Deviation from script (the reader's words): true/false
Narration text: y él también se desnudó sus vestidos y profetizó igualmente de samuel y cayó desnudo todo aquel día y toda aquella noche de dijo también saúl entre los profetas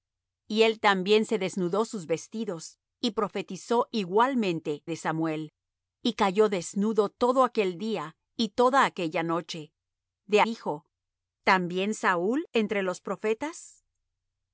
false